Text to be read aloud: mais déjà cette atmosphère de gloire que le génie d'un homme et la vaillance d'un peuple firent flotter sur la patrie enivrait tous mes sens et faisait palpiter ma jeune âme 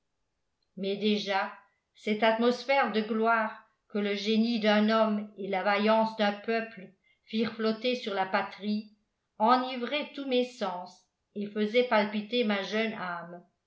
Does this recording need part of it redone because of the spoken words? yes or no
no